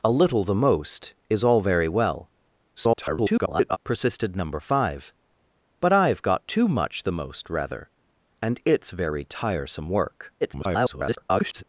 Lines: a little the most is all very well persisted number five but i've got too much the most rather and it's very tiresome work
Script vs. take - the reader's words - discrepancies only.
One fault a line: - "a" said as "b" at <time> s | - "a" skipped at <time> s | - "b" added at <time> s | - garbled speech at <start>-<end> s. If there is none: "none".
- garbled speech at 2.8-3.8 s
- garbled speech at 10.4-11.6 s